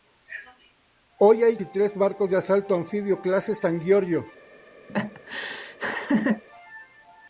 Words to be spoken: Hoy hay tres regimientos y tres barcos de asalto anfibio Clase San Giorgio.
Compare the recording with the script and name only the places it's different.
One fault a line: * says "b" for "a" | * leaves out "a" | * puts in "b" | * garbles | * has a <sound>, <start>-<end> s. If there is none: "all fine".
* leaves out "tres regimientos"
* has a laugh, 4.9-6.4 s